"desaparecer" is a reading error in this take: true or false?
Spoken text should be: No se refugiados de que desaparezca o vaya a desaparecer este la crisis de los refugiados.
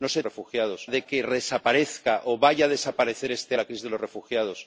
false